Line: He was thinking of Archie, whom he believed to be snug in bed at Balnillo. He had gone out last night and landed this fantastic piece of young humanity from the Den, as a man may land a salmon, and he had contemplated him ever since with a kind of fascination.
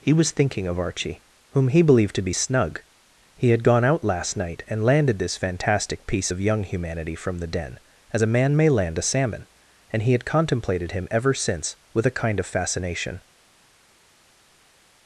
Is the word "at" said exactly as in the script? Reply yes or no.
no